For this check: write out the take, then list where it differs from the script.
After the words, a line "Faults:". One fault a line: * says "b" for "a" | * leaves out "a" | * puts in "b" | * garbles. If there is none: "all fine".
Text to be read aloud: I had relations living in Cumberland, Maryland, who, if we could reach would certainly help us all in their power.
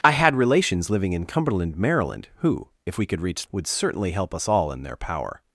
I had relations living in Cumberland, Maryland, who, if we could reach would certainly help us all in their power.
Faults:
all fine